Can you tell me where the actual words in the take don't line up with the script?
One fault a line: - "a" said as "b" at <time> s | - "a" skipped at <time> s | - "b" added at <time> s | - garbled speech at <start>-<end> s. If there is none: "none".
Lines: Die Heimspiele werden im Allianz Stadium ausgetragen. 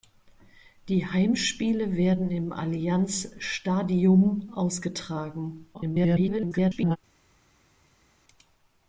- garbled speech at 5.7-7.0 s